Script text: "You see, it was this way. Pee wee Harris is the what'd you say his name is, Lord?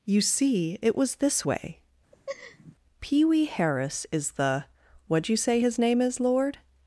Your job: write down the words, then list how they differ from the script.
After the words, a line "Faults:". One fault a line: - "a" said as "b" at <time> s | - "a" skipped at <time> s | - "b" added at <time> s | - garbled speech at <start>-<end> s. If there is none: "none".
"You see, it was this way. Pee wee Harris is the what'd you say his name is, Lord?
Faults:
none